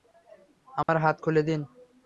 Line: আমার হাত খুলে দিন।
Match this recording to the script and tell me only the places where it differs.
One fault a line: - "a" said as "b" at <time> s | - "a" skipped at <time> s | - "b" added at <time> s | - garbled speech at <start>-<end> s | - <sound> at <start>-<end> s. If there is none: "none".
- dropout at 0.8-0.9 s